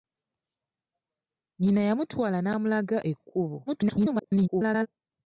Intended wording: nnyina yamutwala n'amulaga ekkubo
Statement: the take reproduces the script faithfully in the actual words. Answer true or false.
false